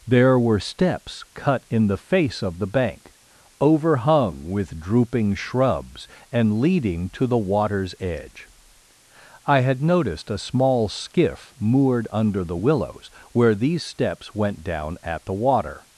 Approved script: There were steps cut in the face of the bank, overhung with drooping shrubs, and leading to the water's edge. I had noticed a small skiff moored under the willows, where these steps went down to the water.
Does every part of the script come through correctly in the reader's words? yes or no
no